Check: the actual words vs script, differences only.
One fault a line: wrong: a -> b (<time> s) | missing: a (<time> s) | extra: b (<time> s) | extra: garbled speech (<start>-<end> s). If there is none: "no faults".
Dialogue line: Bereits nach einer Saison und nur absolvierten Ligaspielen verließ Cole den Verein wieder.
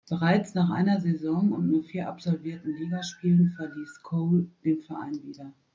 extra: vier (1.8 s)